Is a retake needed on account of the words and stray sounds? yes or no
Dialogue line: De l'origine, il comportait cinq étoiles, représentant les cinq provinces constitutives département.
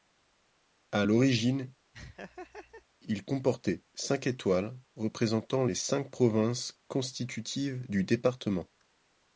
yes